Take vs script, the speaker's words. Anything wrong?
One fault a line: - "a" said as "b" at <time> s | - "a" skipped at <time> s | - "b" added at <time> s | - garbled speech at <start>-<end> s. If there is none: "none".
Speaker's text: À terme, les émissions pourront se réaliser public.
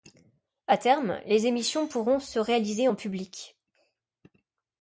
- "en" added at 2.9 s